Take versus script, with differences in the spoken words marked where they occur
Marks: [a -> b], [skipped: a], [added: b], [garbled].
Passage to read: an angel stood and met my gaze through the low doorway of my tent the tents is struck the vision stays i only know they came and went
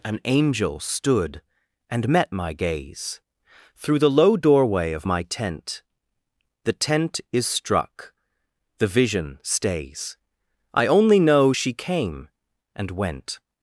an angel stood and met my gaze through the low doorway of my tent the [tents -> tent] is struck the vision stays i only know [they -> she] came and went